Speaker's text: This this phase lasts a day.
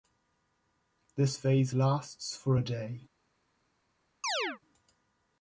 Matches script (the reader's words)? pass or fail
fail